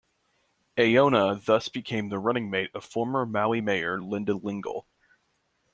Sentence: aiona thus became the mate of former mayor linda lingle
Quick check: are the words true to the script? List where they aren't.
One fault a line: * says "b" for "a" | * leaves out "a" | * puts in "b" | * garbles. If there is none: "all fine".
* puts in "running"
* puts in "maui"